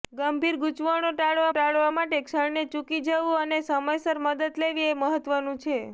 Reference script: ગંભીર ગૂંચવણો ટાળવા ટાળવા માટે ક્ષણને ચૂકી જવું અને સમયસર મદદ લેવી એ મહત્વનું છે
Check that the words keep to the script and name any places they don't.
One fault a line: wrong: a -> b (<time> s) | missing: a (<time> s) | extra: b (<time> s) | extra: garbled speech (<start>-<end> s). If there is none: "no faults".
no faults